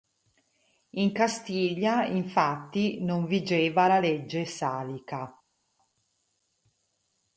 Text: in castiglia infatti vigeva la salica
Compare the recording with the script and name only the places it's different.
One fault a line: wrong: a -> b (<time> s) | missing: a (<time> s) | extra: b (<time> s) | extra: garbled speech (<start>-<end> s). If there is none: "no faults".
extra: non (3.0 s)
extra: legge (4.0 s)